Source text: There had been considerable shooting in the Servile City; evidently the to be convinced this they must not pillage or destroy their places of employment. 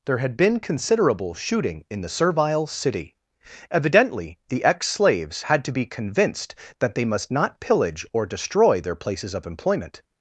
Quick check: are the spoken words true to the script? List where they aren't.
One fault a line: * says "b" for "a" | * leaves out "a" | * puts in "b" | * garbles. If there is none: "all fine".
* puts in "ex slaves had"
* says "that" for "this"